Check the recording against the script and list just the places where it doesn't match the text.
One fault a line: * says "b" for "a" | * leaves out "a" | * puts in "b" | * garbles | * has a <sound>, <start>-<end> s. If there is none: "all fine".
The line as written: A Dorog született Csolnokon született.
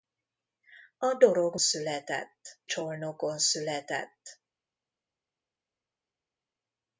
all fine